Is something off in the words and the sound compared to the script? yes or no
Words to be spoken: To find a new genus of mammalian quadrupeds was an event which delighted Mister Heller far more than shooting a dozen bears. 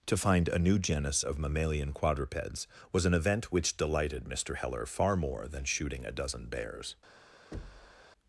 yes